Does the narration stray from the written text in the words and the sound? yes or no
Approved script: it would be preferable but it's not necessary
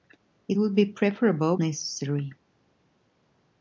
yes